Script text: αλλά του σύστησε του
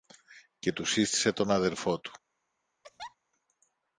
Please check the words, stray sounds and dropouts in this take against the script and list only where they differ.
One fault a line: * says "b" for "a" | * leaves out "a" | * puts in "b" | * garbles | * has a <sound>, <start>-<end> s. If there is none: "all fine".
* says "και" for "αλλά"
* puts in "τον αδελφό"
* has a laugh, 2.8-3.2 s